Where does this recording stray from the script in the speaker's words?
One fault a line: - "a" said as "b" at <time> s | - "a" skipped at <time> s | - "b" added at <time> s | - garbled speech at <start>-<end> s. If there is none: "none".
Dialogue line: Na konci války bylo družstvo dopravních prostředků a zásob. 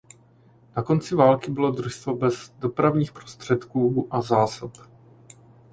- "bez" added at 2.2 s